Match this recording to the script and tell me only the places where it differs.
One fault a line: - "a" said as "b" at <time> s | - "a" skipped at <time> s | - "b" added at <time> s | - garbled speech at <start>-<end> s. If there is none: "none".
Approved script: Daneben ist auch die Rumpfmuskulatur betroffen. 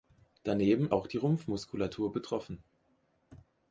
- "ist" skipped at 0.9 s